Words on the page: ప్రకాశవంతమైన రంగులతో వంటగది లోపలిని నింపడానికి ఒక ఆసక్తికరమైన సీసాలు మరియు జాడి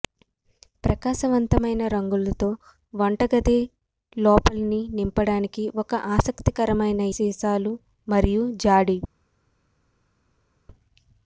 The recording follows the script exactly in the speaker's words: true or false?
true